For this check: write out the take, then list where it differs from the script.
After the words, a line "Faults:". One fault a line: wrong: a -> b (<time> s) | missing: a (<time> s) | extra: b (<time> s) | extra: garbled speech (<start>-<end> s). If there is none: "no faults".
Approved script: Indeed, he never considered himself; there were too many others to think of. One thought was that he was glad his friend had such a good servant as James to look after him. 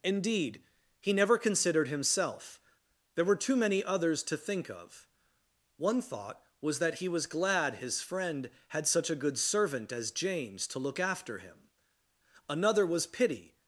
Indeed, he never considered himself; there were too many others to think of. One thought was that he was glad his friend had such a good servant as James to look after him. Another was pity
Faults:
extra: Another was pity (12.5 s)